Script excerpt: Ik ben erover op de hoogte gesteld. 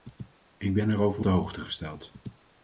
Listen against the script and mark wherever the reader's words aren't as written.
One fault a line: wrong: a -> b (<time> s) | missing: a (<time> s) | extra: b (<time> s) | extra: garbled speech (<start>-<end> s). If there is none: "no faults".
missing: op (1.2 s)